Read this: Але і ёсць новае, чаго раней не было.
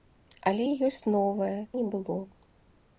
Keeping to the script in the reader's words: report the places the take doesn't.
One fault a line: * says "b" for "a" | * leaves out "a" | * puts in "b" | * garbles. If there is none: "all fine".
* leaves out "чаго раней"